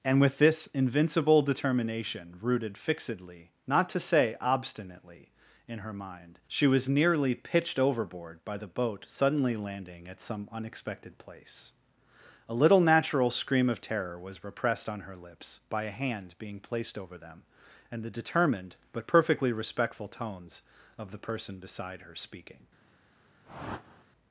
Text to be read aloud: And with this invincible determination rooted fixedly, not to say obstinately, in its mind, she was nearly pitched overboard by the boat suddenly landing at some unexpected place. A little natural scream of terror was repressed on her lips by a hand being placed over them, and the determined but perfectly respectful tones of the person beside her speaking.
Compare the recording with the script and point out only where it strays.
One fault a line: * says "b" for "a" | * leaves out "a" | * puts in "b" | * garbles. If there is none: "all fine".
* says "her" for "its"